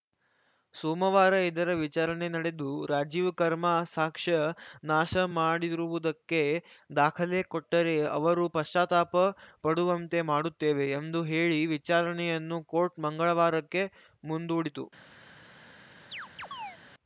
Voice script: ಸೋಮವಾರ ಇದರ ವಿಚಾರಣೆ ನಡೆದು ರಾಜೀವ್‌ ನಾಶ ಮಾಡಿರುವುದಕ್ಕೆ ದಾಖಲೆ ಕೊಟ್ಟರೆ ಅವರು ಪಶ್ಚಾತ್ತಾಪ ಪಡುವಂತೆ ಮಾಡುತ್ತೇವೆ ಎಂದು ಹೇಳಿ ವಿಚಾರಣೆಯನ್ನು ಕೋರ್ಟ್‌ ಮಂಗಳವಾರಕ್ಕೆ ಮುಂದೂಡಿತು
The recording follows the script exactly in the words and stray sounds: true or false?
false